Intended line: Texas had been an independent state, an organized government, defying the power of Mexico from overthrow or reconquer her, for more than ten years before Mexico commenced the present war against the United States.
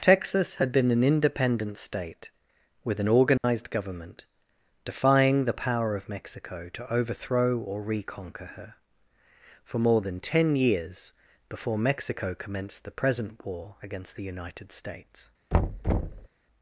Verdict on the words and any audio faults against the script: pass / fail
fail